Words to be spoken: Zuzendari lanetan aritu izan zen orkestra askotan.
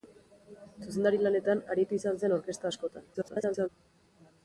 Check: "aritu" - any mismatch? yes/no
no